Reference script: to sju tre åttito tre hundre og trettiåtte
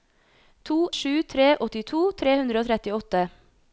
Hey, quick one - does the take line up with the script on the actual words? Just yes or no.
yes